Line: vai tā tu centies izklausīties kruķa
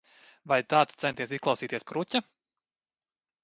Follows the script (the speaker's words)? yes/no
yes